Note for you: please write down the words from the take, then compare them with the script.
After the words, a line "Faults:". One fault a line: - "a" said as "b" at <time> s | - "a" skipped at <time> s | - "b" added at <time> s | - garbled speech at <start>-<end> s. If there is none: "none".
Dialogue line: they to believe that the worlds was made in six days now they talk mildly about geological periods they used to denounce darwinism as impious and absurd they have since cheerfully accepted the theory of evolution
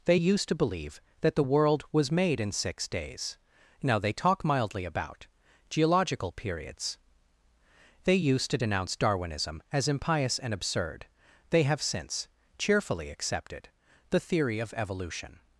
they used to believe that the world was made in six days now they talk mildly about geological periods they used to denounce darwinism as impious and absurd they have since cheerfully accepted the theory of evolution
Faults:
- "used" added at 0.1 s
- "worlds" said as "world" at 1.4 s